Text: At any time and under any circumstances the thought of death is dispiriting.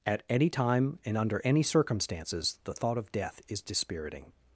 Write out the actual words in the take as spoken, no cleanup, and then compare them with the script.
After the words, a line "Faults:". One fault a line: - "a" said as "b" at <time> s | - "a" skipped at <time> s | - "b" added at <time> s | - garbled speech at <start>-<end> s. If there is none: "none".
At any time and under any circumstances the thought of death is dispiriting.
Faults:
none